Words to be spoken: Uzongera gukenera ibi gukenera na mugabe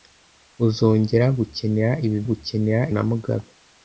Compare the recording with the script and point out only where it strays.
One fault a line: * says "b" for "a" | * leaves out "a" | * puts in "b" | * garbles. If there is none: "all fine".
all fine